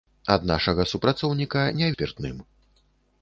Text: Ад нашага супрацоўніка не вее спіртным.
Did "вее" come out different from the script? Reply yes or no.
yes